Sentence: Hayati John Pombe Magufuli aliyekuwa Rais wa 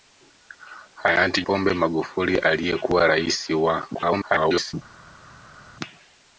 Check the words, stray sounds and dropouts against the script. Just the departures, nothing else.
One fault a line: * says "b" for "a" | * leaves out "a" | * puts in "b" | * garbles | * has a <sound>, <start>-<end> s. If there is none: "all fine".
* leaves out "John"
* garbles